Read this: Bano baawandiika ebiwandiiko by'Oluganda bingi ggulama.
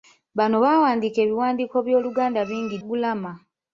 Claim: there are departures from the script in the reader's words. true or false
false